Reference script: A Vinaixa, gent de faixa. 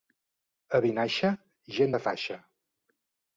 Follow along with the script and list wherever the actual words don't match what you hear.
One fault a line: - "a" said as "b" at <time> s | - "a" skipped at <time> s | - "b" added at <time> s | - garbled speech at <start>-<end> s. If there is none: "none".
none